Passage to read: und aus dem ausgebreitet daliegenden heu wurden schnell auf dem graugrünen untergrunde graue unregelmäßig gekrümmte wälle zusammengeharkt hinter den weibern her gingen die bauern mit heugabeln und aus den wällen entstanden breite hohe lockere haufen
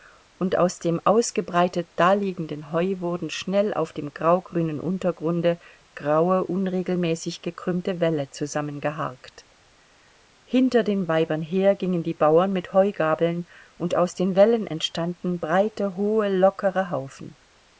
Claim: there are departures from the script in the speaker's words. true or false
false